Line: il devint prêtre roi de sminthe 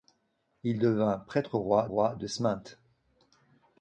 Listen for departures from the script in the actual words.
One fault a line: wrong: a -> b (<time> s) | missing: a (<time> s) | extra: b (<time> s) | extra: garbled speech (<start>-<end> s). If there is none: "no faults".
extra: roi (1.9 s)